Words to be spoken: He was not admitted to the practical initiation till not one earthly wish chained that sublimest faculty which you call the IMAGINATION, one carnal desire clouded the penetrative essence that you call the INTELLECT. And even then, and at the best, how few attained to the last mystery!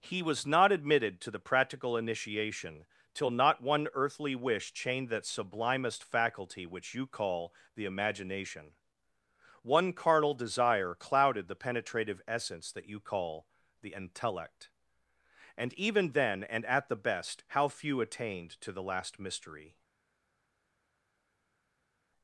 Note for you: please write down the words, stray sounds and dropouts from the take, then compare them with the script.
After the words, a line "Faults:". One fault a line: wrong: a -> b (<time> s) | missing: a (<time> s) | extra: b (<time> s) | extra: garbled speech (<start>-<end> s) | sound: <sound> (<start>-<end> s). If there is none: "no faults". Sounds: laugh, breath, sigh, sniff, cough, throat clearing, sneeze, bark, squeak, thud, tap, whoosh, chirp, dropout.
He was not admitted to the practical initiation till not one earthly wish chained that sublimest faculty which you call the IMAGINATION, one carnal desire clouded the penetrative essence that you call the INTELLECT. And even then, and at the best, how few attained to the last mystery!
Faults:
no faults